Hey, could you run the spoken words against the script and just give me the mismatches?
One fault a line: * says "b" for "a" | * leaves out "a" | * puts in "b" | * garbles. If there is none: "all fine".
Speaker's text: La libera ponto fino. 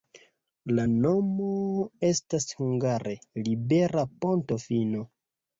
* puts in "nomo estas hungare"